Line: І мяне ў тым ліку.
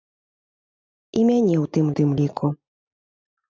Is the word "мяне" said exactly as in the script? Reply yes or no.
yes